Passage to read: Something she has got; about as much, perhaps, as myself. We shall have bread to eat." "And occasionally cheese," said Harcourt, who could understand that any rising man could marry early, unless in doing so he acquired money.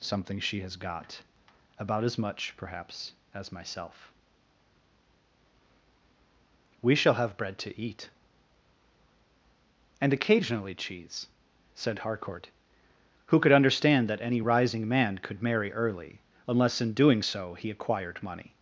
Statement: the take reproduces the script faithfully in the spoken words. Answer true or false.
true